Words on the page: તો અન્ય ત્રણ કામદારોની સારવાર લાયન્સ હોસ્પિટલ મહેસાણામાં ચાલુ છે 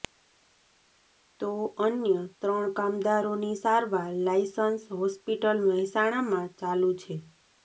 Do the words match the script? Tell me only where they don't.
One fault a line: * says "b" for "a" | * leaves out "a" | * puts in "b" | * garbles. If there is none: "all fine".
all fine